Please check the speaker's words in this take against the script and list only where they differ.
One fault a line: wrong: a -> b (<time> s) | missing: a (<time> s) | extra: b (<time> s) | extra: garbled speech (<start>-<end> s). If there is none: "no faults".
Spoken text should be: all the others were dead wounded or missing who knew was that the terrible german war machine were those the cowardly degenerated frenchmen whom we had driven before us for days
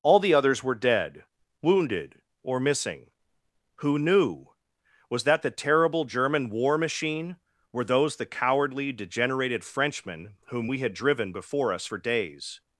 no faults